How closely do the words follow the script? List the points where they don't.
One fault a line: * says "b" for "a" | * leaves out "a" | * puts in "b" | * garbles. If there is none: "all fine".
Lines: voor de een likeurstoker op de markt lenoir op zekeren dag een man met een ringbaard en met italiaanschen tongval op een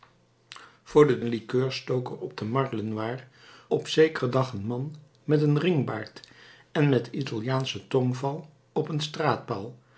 all fine